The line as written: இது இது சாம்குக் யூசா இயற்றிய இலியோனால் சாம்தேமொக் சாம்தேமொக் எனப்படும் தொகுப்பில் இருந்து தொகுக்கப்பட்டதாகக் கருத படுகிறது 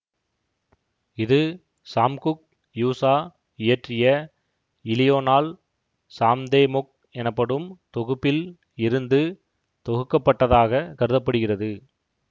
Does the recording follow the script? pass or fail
fail